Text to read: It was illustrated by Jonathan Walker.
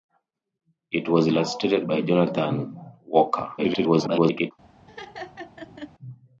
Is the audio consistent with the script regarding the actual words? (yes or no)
no